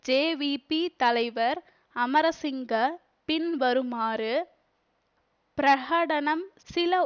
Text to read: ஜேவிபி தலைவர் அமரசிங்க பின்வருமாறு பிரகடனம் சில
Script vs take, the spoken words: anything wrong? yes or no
no